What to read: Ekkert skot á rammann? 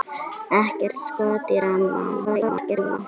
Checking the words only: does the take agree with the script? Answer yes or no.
no